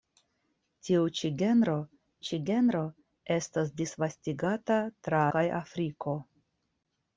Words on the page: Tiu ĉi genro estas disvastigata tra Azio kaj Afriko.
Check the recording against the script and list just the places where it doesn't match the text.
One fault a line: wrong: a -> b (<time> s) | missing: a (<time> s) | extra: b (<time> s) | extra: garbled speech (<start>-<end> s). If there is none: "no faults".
extra: ĉi genro (2.3 s)
missing: Azio (5.2 s)